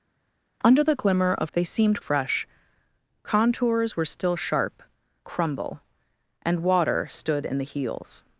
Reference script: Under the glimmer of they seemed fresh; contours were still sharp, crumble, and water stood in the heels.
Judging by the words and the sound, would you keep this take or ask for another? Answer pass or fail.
pass